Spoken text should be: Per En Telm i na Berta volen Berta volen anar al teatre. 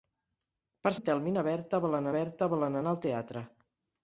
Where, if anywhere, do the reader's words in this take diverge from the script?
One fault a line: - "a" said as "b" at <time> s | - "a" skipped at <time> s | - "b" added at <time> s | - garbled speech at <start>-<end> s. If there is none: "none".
none